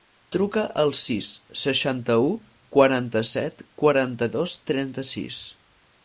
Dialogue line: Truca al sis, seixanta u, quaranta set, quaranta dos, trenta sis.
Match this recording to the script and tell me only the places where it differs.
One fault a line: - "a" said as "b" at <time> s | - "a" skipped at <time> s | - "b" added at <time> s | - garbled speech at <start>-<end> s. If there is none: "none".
none